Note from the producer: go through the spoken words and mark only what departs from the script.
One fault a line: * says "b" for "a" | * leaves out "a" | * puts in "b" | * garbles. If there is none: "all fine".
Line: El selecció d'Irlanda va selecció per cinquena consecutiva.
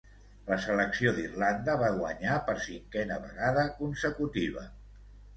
* says "La" for "El"
* says "guanyar" for "selecció"
* puts in "vegada"